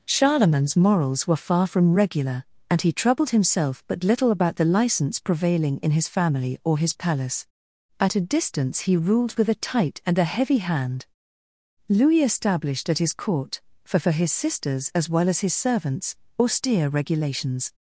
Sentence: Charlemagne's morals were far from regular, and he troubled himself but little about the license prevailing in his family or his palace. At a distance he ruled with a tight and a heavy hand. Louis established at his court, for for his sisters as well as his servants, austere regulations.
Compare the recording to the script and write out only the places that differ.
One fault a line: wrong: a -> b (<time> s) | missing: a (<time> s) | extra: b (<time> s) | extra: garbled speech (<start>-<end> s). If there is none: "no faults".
no faults